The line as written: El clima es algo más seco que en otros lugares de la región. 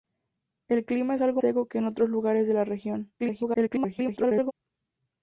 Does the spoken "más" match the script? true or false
false